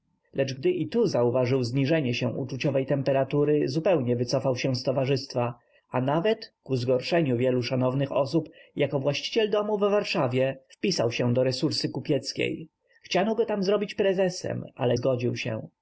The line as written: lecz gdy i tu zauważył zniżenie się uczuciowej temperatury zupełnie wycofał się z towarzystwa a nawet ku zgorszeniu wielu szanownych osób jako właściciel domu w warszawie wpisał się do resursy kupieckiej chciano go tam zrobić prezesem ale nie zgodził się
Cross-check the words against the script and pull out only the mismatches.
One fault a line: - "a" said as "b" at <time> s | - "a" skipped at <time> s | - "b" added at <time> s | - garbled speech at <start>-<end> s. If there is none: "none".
- "nie" skipped at 15.0 s